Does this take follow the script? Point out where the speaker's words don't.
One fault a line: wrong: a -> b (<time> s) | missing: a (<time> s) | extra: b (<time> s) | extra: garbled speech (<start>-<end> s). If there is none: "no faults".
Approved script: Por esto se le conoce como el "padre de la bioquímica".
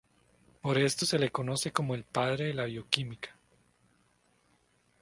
no faults